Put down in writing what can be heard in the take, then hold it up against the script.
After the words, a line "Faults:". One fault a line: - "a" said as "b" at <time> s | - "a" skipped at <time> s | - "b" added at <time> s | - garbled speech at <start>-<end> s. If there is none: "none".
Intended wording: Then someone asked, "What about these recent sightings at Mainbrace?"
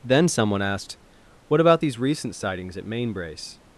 Then someone asked, "What about these recent sightings at Mainbrace?"
Faults:
none